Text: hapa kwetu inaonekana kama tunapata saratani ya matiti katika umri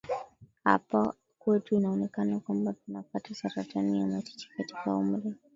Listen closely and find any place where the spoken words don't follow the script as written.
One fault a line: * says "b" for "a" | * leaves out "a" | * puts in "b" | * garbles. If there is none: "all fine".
* says "kwamba" for "kama"